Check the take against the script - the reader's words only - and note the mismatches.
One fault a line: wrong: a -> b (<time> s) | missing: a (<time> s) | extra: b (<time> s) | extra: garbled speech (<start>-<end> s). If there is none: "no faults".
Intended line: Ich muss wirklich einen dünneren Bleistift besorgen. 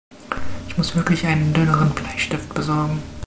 no faults